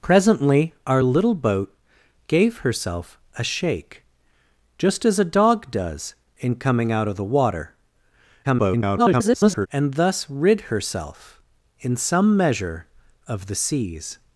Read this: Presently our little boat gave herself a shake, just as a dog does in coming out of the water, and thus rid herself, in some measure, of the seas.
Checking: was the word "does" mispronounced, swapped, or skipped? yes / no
no